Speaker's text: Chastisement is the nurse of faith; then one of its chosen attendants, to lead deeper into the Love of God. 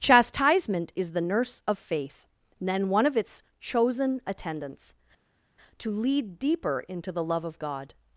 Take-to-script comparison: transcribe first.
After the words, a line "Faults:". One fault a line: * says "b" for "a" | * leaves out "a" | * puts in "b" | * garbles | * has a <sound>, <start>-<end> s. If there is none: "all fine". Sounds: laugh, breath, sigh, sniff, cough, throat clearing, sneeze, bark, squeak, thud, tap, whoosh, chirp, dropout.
Chastisement is the nurse of faith; then one of its chosen attendants, to lead deeper into the Love of God.
Faults:
all fine